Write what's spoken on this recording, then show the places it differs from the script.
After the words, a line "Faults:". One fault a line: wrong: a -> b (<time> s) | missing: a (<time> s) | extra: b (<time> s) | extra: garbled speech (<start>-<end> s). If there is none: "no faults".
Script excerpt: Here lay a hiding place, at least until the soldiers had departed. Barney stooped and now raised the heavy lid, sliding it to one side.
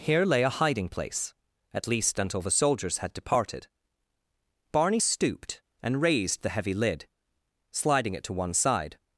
Here lay a hiding place, at least until the soldiers had departed. Barney stooped and raised the heavy lid, sliding it to one side.
Faults:
missing: now (6.0 s)